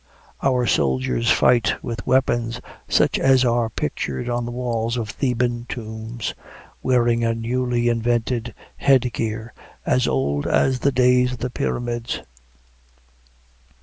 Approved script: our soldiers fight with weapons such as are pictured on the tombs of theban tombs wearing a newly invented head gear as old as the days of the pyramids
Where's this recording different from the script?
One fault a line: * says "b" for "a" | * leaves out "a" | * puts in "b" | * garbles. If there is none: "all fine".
* says "walls" for "tombs"